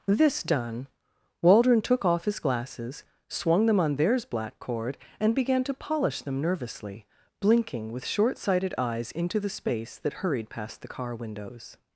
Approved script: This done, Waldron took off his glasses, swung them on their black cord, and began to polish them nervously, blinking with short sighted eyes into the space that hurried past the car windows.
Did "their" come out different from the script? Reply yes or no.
yes